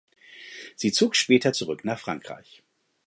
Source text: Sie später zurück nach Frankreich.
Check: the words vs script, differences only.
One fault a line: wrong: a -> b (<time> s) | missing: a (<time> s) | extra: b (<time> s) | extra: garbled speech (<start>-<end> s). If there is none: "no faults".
extra: zog (0.9 s)